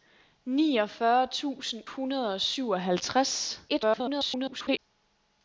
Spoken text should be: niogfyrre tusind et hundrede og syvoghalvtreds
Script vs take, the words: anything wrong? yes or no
yes